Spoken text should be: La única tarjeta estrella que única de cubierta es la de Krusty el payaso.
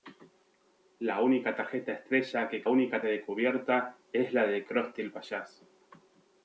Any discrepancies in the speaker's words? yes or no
no